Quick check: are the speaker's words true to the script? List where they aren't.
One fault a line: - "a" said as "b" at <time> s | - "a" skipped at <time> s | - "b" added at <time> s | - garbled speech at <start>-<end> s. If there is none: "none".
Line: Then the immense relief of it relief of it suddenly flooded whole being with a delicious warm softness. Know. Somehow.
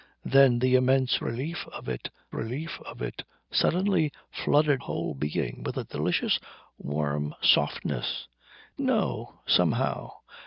none